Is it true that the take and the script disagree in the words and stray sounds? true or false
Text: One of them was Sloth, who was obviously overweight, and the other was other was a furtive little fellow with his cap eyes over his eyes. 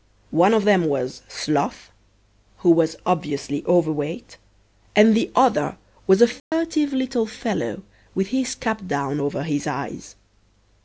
true